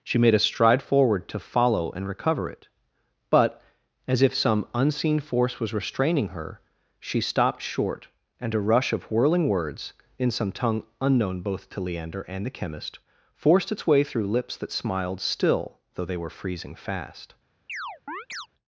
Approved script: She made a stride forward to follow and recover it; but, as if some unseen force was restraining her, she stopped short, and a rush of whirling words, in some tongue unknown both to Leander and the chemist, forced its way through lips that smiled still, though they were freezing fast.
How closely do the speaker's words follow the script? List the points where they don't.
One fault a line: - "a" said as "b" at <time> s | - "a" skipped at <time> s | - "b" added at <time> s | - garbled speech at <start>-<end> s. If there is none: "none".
none